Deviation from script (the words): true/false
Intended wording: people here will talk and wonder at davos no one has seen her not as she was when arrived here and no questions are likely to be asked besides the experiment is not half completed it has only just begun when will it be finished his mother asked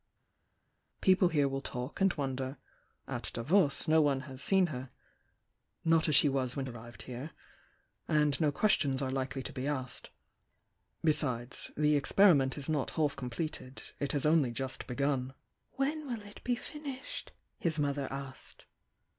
false